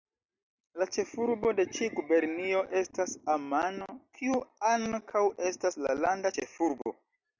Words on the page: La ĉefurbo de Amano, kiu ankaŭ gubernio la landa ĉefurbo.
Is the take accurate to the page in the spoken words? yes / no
no